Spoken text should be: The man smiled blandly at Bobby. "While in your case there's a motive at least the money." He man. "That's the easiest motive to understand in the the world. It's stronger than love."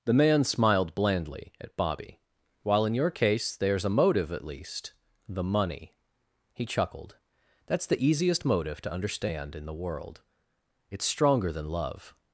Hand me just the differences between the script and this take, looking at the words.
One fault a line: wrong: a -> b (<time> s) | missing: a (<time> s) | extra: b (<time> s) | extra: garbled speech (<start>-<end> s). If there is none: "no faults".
wrong: man -> chuckled (6.6 s)
missing: the (9.8 s)